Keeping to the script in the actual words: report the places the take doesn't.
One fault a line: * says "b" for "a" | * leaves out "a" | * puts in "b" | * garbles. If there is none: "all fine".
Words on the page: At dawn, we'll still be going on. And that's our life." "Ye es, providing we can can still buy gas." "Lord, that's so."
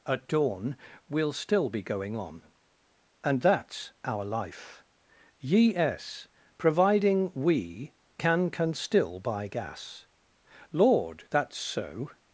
all fine